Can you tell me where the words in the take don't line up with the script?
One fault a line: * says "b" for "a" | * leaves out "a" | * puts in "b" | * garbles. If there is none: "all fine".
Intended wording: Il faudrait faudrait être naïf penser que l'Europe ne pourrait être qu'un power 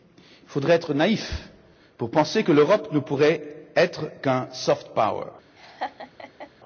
* leaves out "faudrait"
* puts in "pour"
* puts in "soft"